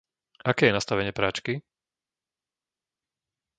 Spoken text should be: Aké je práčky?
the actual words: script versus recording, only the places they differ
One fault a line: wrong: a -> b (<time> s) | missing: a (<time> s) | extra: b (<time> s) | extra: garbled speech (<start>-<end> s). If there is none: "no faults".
extra: nastavenie (0.8 s)